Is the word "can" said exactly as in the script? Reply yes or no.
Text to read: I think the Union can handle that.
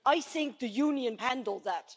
no